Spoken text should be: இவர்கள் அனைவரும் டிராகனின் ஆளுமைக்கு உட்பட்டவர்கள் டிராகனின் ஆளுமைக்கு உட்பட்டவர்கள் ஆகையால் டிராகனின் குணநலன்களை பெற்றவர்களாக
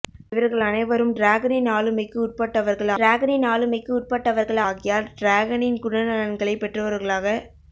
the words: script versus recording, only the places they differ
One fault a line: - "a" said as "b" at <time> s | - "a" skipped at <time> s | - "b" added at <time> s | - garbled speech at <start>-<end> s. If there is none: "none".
none